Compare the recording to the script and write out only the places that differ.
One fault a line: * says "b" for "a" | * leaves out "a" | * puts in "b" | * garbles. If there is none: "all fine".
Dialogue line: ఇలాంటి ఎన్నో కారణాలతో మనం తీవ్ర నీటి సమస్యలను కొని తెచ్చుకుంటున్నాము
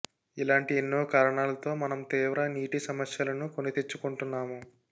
all fine